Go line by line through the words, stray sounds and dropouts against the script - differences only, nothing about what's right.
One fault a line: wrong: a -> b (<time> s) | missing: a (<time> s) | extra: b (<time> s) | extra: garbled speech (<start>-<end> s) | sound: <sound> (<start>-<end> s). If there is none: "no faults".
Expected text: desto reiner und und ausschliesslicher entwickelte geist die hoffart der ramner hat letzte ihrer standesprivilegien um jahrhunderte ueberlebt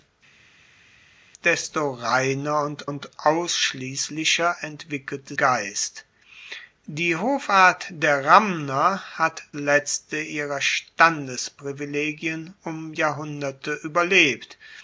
no faults